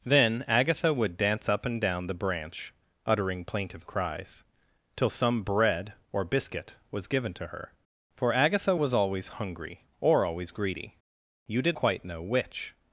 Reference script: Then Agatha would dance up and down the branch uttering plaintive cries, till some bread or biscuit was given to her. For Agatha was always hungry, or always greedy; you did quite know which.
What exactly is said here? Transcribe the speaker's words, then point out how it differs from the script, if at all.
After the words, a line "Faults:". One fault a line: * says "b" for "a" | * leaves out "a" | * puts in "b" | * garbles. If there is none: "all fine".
Then Agatha would dance up and down the branch uttering plaintive cries, till some bread or biscuit was given to her. For Agatha was always hungry, or always greedy; you did quite know which.
Faults:
all fine